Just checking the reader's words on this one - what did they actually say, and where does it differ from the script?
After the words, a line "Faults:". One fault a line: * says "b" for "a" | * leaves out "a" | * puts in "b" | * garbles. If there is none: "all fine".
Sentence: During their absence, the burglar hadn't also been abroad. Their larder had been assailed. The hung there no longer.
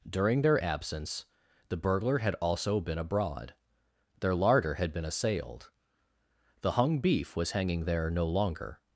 During their absence, the burglar had also been abroad. Their larder had been assailed. The hung beef was hanging there no longer.
Faults:
* says "had" for "hadn't"
* puts in "beef was hanging"